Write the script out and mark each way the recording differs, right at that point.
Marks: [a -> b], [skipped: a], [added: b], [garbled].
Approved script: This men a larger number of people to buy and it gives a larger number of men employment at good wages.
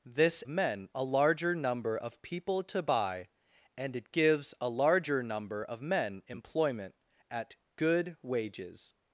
This men a larger number of people to buy and it gives a larger number of men employment at good wages.